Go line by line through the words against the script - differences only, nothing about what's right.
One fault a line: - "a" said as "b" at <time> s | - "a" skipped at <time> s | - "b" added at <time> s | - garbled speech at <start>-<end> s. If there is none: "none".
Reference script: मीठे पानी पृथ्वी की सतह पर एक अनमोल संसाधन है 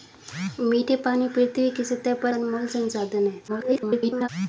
- "एक" skipped at 2.3 s
- garbled speech at 3.5-4.3 s